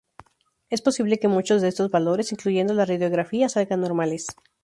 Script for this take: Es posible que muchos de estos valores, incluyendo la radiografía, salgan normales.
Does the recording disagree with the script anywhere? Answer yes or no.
no